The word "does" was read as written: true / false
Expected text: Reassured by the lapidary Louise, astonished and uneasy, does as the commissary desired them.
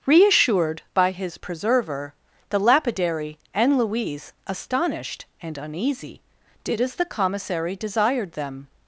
false